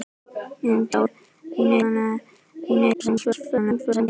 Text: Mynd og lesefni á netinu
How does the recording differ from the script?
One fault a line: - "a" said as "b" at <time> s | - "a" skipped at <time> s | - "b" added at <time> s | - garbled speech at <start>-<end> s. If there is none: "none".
- "lesefni" said as "netinu" at 1.0 s
- garbled speech at 2.9-4.1 s